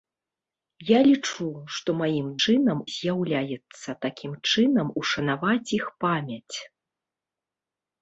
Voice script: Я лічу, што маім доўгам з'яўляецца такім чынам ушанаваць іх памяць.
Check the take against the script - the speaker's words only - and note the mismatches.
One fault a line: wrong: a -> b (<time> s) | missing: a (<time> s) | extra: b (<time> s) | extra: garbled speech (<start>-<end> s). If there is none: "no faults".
wrong: доўгам -> чынам (2.4 s)